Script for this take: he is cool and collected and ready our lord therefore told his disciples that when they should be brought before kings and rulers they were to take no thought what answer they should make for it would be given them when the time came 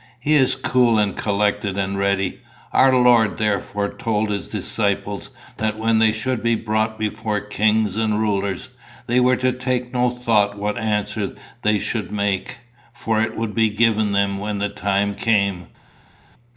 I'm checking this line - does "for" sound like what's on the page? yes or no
yes